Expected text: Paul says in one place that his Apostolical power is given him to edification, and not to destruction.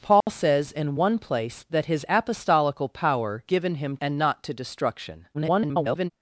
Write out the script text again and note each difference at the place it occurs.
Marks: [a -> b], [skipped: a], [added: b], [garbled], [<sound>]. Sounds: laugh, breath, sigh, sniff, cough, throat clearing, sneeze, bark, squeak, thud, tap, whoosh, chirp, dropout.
Paul [dropout] says in one place that his Apostolical power [skipped: is] given him [skipped: to edification,] and not to destruction. [garbled]